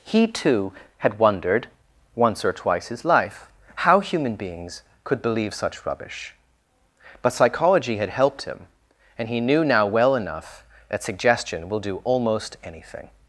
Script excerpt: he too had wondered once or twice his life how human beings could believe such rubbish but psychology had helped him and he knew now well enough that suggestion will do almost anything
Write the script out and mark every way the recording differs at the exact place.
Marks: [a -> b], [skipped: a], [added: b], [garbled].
he too had wondered once or twice his life how human beings could believe such rubbish but psychology had helped him and he knew now well enough that suggestion will do almost anything